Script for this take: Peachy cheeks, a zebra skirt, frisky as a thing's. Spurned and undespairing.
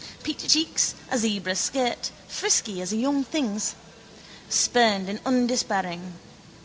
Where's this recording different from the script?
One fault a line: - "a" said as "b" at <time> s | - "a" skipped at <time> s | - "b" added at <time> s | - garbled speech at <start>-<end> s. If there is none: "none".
- "young" added at 3.0 s